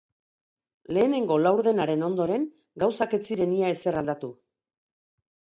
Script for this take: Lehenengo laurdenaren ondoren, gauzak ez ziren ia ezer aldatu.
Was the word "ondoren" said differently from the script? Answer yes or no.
no